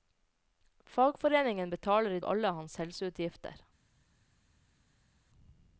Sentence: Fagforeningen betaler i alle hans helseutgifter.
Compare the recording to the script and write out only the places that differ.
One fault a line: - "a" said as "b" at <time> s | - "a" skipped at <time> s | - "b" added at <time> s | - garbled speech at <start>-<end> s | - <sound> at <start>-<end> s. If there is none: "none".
none